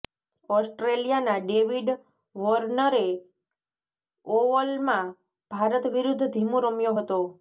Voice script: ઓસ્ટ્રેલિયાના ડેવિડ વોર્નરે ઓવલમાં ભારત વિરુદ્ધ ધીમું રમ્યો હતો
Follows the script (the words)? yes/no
yes